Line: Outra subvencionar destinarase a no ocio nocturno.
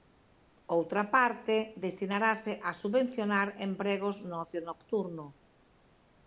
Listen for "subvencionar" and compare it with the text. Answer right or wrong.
wrong